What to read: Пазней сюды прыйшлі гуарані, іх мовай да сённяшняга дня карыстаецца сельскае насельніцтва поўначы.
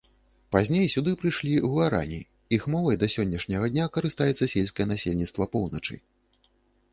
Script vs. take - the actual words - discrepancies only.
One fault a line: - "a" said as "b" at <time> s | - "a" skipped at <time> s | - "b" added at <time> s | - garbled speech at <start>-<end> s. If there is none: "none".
none